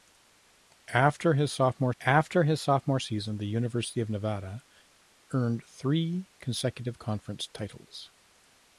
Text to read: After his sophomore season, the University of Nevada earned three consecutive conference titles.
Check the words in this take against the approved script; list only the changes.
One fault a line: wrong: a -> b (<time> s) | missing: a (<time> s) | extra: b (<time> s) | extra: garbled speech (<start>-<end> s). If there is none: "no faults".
extra: after his sophomore (2.0 s)